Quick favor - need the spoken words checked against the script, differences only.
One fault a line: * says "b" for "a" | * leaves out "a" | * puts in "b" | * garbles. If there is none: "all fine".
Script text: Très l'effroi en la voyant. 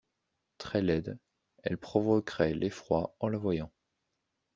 * puts in "laide elle provoquerait"